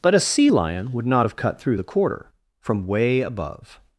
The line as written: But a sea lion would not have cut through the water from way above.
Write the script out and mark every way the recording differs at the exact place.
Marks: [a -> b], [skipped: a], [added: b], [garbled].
But a sea lion would not have cut through the [water -> quarter] from way above.